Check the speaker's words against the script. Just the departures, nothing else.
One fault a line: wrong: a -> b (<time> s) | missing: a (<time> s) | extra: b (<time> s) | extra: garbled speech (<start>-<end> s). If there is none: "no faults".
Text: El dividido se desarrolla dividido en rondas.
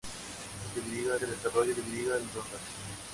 no faults